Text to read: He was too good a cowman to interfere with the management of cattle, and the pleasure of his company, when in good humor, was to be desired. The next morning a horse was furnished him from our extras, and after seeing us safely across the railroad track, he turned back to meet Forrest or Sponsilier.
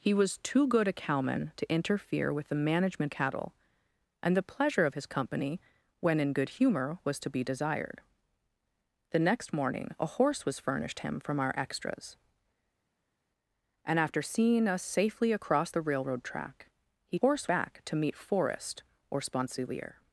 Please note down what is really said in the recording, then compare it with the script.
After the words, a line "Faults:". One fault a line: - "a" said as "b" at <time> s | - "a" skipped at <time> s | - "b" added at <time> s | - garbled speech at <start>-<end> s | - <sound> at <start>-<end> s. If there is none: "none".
He was too good a cowman to interfere with the management cattle, and the pleasure of his company, when in good humor, was to be desired. The next morning a horse was furnished him from our extras, and after seeing us safely across the railroad track, he horse back to meet Forrest or Sponsilier.
Faults:
- "of" skipped at 3.1 s
- "turned" said as "horse" at 17.2 s